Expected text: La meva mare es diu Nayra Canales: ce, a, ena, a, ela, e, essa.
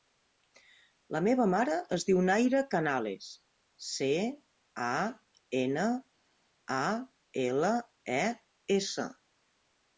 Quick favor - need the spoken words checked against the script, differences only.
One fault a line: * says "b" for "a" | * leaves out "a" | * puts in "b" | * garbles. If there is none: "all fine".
all fine